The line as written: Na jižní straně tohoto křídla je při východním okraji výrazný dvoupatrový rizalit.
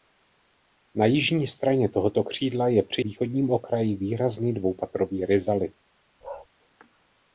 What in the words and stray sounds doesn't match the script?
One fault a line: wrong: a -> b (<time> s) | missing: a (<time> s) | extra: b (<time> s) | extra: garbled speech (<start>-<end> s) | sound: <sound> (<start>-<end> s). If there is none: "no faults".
sound: bark (6.2-6.5 s)